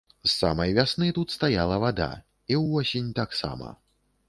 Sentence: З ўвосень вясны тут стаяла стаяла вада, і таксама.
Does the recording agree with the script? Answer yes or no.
no